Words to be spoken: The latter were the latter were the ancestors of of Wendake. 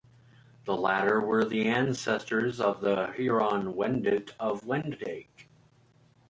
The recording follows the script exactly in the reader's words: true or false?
false